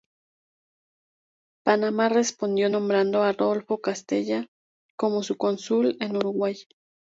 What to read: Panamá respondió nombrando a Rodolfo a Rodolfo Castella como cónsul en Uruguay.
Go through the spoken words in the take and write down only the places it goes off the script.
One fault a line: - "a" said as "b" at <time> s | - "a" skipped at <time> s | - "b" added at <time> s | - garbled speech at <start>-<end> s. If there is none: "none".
- "a Rodolfo" skipped at 3.8 s
- "su" added at 5.2 s